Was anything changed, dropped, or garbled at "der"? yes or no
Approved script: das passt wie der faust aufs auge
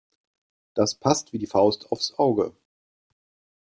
yes